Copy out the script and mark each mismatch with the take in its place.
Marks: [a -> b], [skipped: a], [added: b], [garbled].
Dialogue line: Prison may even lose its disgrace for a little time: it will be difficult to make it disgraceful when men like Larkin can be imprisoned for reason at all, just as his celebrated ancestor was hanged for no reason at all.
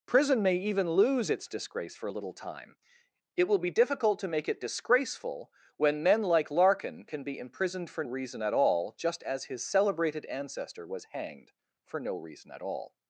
Prison may even lose its disgrace for a little time: it will be difficult to make it disgraceful when men like Larkin can be imprisoned for reason at all, just as his celebrated ancestor was hanged for no reason at all.